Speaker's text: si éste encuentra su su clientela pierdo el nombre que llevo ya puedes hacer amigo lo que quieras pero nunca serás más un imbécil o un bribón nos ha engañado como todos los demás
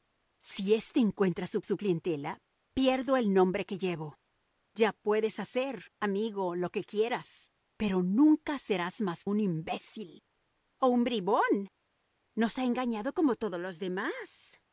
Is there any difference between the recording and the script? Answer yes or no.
no